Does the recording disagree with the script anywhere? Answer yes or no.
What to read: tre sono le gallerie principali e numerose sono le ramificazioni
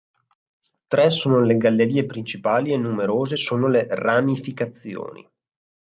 no